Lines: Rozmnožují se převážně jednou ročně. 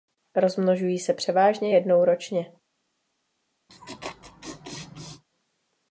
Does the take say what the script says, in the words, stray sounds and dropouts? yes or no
no